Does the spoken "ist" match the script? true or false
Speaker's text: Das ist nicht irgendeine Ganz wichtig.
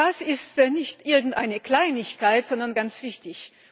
true